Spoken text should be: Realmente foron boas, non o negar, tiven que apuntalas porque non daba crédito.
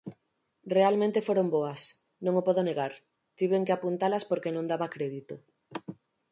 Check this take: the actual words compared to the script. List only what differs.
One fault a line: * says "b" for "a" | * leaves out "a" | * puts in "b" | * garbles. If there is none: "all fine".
* puts in "podo"